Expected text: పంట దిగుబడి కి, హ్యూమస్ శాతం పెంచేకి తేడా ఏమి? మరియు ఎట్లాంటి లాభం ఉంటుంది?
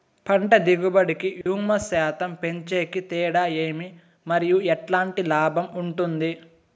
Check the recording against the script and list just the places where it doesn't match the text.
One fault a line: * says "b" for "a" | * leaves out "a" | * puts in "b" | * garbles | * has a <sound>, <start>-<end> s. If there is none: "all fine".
* has a dropout, 1.4-1.5 s